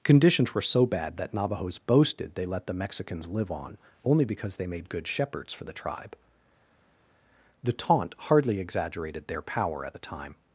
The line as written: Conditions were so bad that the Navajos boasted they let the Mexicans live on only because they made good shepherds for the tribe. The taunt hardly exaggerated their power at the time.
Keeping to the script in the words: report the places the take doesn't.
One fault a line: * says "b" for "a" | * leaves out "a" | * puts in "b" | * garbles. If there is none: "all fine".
* leaves out "the"